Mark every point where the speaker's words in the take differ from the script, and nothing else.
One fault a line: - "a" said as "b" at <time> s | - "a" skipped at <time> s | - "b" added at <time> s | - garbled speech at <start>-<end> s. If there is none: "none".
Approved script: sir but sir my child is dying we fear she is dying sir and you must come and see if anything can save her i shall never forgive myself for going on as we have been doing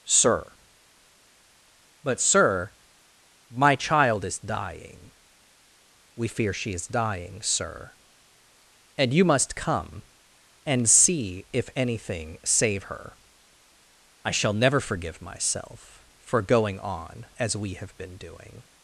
- "can" skipped at 12.4 s